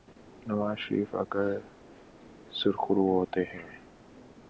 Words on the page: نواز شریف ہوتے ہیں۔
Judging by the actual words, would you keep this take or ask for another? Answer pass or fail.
fail